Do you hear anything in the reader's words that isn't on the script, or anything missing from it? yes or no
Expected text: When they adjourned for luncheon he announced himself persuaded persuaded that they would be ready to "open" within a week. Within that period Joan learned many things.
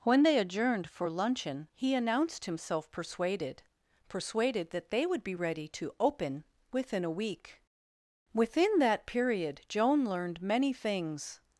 no